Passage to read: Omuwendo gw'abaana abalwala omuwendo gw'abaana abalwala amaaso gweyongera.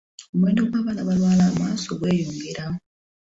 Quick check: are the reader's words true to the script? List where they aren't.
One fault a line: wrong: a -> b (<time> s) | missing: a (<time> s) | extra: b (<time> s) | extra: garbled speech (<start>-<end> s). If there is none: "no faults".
missing: omuwendo gw'abaana abalwala (1.4 s)